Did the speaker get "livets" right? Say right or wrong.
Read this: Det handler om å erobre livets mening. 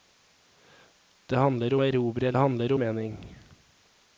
wrong